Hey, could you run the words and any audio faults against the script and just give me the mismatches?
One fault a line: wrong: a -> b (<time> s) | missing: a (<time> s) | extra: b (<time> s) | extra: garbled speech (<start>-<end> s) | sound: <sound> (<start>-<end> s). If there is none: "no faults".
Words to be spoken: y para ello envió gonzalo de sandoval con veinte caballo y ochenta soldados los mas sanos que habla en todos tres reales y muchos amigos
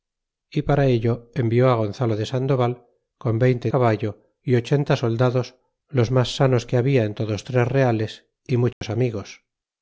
sound: dropout (8.7-8.8 s)